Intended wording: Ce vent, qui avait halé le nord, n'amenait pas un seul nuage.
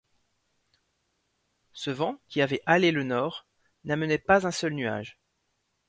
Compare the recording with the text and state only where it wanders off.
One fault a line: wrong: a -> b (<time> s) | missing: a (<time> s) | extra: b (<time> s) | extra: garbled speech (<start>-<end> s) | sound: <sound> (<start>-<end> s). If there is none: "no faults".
no faults